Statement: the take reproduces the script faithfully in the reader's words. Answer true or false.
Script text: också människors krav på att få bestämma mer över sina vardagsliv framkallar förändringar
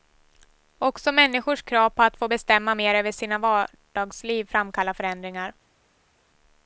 true